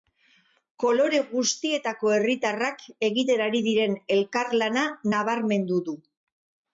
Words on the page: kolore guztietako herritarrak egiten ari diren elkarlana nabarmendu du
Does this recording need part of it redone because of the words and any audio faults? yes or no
no